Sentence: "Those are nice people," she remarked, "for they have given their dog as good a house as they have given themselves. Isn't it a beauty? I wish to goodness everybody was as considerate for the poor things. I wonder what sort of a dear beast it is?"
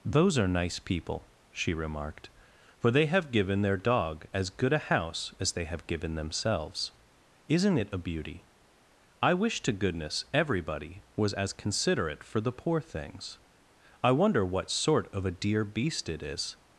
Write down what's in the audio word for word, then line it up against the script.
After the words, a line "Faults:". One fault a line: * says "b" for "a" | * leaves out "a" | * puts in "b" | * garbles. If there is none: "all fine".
"Those are nice people," she remarked, "for they have given their dog as good a house as they have given themselves. Isn't it a beauty? I wish to goodness everybody was as considerate for the poor things. I wonder what sort of a dear beast it is?"
Faults:
all fine